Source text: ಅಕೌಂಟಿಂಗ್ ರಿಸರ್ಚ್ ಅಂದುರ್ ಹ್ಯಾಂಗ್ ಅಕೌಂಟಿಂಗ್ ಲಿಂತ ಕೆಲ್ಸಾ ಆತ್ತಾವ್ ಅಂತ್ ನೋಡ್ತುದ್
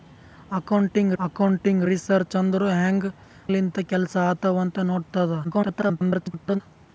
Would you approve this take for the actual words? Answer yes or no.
no